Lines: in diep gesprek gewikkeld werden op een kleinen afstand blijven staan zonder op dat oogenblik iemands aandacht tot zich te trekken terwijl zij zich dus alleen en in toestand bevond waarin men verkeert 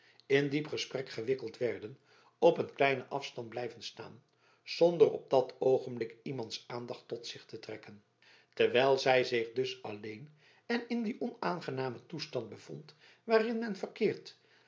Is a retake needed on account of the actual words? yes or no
yes